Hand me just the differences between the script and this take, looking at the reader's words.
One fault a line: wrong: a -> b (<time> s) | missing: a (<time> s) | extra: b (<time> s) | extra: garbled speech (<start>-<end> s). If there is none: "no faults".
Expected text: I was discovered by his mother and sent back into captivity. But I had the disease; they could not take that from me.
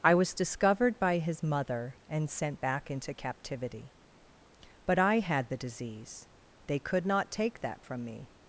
no faults